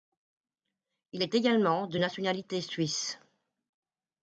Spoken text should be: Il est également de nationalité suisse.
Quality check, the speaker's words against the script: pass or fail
pass